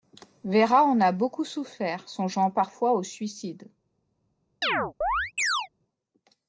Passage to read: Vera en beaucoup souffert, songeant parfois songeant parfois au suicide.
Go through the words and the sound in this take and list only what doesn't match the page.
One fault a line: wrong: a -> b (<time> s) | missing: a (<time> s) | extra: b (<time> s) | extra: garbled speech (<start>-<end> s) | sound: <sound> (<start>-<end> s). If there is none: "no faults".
extra: a (1.0 s)
missing: songeant parfois (2.9 s)
sound: chirp (4.6-5.7 s)